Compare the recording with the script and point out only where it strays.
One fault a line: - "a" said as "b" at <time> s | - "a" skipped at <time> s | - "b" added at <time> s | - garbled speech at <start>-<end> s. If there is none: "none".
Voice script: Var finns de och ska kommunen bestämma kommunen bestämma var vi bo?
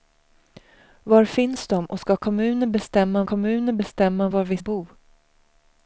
none